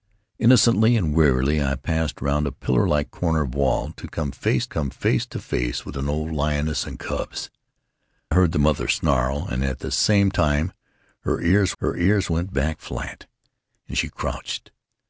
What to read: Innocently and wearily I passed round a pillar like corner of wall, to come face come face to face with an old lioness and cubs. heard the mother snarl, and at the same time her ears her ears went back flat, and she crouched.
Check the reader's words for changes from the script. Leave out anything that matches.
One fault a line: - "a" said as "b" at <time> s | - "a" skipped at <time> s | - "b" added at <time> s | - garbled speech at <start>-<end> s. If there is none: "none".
none